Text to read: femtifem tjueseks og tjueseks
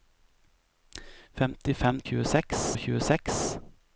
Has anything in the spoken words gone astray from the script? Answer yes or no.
no